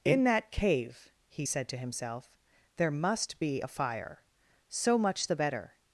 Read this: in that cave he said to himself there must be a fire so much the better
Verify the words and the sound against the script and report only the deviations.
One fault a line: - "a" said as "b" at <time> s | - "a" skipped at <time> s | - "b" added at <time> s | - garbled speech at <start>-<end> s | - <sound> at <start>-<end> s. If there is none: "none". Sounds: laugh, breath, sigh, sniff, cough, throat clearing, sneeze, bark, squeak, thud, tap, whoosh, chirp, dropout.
none